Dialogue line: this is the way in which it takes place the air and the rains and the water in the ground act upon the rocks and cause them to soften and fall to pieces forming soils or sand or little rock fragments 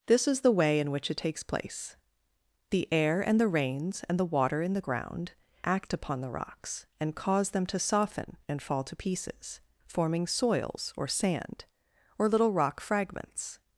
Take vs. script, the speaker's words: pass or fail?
pass